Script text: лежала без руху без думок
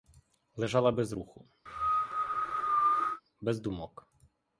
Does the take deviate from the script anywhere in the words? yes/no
no